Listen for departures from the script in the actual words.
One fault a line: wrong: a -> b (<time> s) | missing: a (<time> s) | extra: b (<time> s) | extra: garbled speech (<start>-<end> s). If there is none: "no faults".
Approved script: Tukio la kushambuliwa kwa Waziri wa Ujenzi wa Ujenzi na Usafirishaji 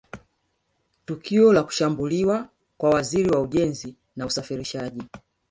missing: wa Ujenzi (4.0 s)